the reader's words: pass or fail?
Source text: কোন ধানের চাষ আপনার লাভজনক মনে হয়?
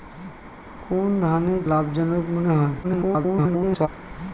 fail